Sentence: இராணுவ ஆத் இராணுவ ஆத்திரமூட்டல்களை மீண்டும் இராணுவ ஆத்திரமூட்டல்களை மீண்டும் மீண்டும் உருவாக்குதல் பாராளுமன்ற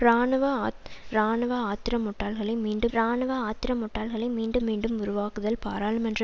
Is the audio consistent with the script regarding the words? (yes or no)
yes